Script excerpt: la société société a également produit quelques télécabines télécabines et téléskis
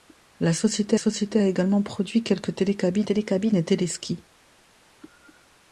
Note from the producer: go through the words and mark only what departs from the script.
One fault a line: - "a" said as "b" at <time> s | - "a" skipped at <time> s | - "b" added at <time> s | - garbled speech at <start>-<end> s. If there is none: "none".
none